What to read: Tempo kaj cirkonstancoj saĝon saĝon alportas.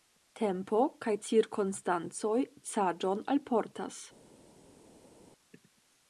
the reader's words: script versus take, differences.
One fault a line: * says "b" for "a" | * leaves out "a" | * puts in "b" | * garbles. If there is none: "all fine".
* leaves out "saĝon"